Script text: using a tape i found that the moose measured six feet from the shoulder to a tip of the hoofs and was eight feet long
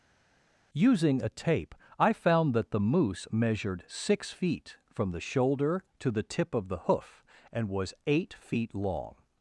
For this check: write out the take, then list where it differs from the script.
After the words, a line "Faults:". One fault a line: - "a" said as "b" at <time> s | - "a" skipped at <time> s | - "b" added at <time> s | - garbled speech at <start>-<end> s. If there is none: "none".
using a tape i found that the moose measured six feet from the shoulder to the tip of the hoof and was eight feet long
Faults:
- "a" said as "the" at 6.1 s
- "hoofs" said as "hoof" at 6.9 s